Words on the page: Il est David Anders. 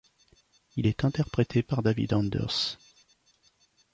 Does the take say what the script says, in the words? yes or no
no